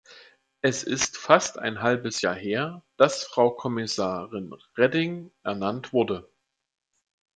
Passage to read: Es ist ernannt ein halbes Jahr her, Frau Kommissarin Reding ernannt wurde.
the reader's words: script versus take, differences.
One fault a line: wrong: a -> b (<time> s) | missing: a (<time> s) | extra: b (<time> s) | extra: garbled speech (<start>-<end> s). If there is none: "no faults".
wrong: ernannt -> fast (1.2 s)
extra: dass (3.0 s)